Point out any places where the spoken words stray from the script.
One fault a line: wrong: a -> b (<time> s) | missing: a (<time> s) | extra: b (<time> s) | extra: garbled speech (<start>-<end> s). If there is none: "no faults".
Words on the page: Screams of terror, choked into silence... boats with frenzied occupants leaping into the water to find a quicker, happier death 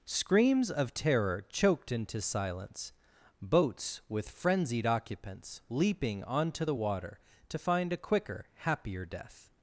wrong: into -> onto (6.2 s)